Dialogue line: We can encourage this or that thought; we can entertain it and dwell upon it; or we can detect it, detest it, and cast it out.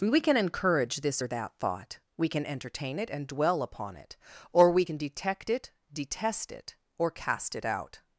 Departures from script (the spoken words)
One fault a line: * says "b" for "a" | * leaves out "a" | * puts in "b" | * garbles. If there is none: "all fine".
* says "or" for "and"